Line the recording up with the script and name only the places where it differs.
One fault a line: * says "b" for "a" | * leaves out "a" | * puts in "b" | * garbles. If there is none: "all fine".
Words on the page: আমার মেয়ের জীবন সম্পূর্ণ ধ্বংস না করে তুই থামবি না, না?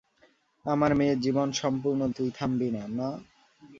* leaves out "ধ্বংস না করে"